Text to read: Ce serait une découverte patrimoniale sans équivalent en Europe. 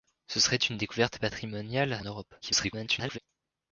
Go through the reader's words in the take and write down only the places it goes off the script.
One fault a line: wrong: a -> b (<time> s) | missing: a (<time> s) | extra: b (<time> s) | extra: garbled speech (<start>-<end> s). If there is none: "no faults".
missing: sans équivalent (2.0 s)
extra: garbled speech (2.4-3.2 s)